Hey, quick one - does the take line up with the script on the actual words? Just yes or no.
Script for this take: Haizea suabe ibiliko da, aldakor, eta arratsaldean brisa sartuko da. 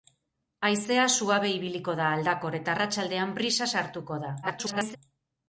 no